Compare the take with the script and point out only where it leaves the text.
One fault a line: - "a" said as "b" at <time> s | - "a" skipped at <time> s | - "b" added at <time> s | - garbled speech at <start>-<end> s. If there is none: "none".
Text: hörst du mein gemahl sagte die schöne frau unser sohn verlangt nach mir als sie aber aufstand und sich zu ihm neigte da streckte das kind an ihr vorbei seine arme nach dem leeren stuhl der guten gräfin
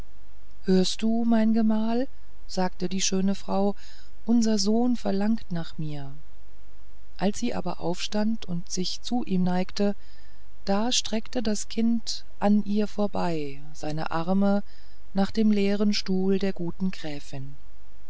none